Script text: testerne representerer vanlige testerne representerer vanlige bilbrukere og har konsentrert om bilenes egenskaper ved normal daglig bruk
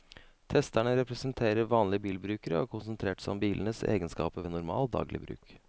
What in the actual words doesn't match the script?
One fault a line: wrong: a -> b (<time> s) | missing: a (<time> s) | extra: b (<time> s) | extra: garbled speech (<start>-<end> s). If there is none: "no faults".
missing: testerne representerer vanlige (2.0 s)
extra: seg (3.2 s)